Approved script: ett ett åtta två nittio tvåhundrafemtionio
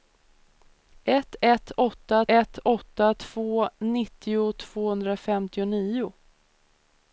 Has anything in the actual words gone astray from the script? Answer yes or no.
yes